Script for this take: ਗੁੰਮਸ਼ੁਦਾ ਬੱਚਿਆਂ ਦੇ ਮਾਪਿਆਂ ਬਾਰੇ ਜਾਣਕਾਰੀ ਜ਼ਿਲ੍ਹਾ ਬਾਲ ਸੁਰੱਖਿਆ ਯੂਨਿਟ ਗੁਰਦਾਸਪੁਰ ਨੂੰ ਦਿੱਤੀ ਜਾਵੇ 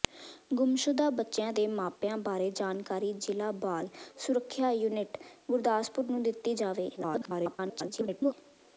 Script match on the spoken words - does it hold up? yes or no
no